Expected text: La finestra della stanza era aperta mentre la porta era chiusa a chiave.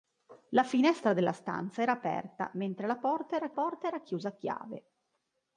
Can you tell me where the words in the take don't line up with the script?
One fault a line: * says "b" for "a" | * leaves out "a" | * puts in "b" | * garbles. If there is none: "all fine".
* puts in "porta era"